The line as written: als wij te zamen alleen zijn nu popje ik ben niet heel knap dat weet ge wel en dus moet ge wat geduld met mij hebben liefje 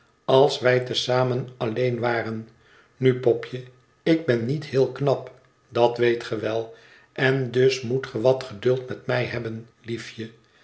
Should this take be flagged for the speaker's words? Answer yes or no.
yes